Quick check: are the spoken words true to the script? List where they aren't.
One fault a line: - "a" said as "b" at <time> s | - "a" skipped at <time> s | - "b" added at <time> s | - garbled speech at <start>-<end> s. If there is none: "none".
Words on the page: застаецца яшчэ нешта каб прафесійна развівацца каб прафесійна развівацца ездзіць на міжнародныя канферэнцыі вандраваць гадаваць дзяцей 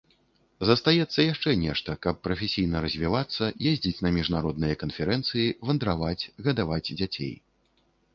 - "каб прафесійна развівацца" skipped at 3.5 s